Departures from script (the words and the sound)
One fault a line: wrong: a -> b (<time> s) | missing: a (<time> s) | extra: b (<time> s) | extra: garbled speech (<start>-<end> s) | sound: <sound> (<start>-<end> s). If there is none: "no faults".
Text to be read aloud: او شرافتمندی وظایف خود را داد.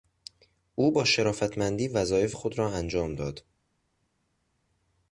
extra: با (0.9 s)
extra: انجام (2.7 s)